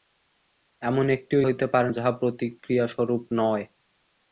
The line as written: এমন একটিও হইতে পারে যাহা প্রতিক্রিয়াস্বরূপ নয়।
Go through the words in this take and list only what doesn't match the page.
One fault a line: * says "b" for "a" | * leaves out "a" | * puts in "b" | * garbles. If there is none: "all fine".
all fine